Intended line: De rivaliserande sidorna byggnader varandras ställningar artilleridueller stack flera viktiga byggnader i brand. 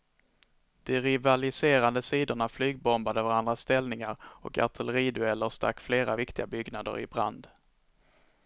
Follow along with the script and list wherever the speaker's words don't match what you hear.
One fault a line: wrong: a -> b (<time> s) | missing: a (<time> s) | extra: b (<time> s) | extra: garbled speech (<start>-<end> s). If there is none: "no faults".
wrong: byggnader -> flygbombade (2.5 s)
extra: och (4.2 s)